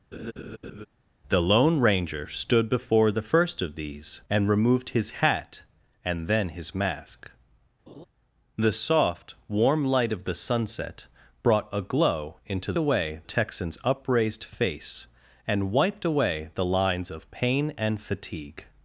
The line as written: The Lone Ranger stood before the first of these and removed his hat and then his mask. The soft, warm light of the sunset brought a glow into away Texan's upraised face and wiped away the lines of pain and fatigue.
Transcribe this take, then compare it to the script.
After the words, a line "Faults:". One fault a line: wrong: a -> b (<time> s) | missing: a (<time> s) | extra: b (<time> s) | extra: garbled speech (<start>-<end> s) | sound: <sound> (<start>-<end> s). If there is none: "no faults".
The Lone Ranger stood before the first of these and removed his hat and then his mask. The soft, warm light of the sunset brought a glow into away Texan's upraised face and wiped away the lines of pain and fatigue.
Faults:
sound: laugh (0.1-0.9 s)
sound: laugh (7.9-8.0 s)